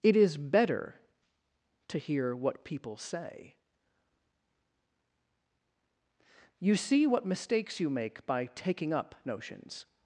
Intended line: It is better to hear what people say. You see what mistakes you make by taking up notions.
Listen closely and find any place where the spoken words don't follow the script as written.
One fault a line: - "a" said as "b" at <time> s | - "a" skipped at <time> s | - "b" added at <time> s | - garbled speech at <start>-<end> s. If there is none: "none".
none